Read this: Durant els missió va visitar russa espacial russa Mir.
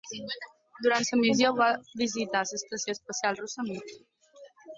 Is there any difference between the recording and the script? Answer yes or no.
yes